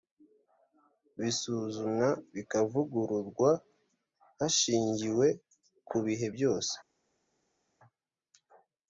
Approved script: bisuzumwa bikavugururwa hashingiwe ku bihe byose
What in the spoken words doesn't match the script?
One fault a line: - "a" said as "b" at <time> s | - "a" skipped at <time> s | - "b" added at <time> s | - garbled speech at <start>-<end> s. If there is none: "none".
none